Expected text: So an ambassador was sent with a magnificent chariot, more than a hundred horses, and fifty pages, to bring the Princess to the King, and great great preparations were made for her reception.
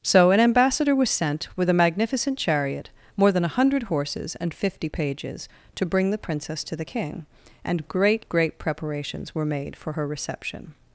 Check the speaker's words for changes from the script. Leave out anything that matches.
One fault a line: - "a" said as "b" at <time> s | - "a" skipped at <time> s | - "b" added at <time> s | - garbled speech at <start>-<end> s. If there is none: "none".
none